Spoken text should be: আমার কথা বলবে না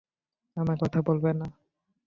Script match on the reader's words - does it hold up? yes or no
yes